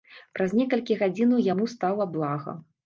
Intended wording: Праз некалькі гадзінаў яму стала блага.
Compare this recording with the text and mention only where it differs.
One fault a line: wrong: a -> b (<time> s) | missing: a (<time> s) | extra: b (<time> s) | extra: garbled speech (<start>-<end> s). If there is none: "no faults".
no faults